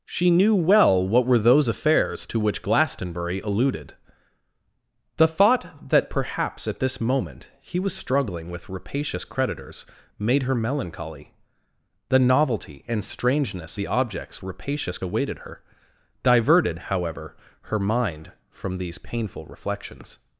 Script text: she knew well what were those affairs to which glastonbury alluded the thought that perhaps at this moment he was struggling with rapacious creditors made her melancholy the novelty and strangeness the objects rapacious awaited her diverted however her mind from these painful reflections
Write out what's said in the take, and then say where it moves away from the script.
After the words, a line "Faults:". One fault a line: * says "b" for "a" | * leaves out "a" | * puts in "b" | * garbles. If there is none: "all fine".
she knew well what were those affairs to which glastonbury alluded the thought that perhaps at this moment he was struggling with rapacious creditors made her melancholy the novelty and strangeness the objects rapacious awaited her diverted however her mind from these painful reflections
Faults:
all fine